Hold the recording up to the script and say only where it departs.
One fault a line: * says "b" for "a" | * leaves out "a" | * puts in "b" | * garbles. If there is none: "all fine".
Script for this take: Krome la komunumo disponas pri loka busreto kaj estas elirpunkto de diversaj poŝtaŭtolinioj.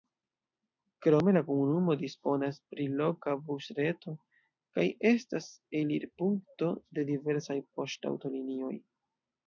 all fine